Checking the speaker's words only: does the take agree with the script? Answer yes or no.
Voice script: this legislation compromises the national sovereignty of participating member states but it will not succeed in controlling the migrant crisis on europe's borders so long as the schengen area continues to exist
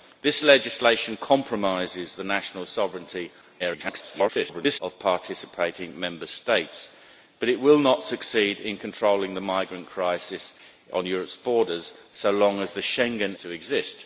no